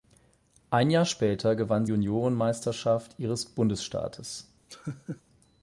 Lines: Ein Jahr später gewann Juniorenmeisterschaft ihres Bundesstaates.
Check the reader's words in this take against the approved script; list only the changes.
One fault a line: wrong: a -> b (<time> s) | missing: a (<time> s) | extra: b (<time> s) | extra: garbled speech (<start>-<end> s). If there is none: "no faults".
no faults